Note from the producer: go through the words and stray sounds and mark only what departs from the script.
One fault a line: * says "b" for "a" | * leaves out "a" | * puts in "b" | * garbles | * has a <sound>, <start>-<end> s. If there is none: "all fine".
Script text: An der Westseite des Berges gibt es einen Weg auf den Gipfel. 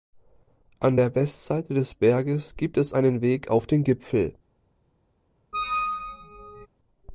* has a squeak, 5.5-6.7 s